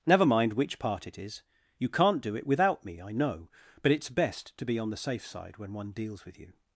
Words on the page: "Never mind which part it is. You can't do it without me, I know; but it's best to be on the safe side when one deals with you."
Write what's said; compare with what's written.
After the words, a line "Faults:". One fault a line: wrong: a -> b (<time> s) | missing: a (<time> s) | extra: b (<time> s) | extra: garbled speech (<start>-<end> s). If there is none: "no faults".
"Never mind which part it is. You can't do it without me, I know; but it's best to be on the safe side when one deals with you."
Faults:
no faults